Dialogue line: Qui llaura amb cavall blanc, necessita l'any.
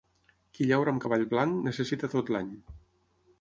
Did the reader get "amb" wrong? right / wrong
right